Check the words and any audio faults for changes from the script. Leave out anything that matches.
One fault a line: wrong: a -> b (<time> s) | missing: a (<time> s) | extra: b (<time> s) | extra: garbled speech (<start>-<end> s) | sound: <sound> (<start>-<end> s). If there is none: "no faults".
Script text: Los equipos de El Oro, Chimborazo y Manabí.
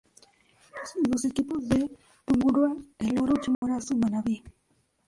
extra: Tungurahua (2.2 s)
sound: dropout (3.5-3.6 s)